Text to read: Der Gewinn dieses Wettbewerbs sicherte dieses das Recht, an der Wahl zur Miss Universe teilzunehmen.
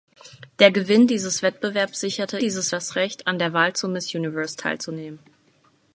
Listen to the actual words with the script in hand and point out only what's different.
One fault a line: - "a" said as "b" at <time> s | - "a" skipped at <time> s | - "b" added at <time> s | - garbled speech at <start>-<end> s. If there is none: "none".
none